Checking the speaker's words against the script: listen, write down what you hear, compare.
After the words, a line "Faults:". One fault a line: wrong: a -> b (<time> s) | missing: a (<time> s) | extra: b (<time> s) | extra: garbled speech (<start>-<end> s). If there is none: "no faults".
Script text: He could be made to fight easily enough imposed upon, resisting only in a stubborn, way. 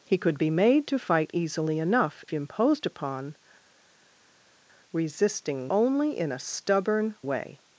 He could be made to fight easily enough imposed upon, resisting only in a stubborn, way.
Faults:
no faults